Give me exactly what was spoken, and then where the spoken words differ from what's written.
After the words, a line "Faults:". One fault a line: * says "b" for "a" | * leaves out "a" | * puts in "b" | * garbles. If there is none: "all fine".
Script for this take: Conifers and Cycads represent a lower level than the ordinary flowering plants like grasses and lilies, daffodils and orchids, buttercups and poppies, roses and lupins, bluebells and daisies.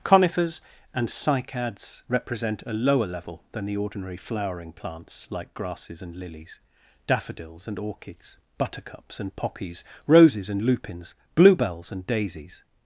Conifers and Cycads represent a lower level than the ordinary flowering plants like grasses and lilies, daffodils and orchids, buttercups and poppies, roses and lupins, bluebells and daisies.
Faults:
all fine